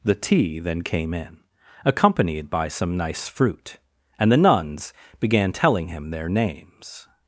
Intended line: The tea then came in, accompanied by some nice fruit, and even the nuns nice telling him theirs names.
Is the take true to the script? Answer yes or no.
no